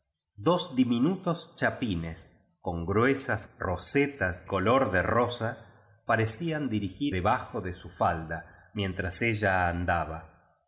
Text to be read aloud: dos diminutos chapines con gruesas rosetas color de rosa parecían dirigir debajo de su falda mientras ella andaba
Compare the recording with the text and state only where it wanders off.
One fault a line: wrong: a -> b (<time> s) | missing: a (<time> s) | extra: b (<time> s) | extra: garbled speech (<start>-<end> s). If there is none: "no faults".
no faults